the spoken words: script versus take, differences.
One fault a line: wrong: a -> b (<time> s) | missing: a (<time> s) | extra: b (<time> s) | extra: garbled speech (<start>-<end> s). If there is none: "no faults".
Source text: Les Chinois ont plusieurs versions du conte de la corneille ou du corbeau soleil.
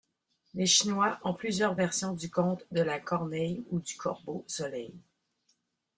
no faults